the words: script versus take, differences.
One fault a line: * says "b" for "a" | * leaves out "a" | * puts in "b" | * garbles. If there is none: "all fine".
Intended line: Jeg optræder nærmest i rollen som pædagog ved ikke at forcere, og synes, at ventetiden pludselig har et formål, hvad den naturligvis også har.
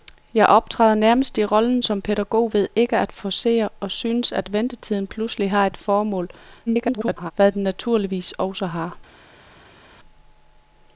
* garbles